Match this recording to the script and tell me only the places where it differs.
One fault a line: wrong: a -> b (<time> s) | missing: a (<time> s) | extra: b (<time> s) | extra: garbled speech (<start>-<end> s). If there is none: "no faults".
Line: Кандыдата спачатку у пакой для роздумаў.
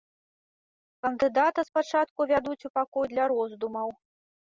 extra: вядуць (2.3 s)